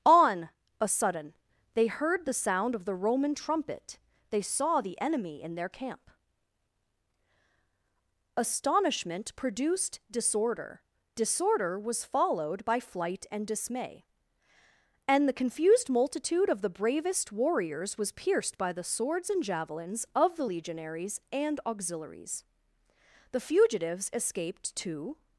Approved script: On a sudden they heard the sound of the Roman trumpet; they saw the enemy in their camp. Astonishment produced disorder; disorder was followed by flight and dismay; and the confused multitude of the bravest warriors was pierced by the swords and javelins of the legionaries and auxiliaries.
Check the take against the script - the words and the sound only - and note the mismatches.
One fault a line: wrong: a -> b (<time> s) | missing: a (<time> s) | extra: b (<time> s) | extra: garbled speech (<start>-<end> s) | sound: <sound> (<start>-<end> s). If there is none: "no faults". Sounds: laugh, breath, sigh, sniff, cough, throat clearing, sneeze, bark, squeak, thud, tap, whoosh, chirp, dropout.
extra: The fugitives escaped to (23.3 s)